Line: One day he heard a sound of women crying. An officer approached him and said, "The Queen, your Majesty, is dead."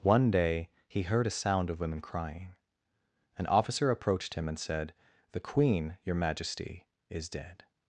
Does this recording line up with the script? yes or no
yes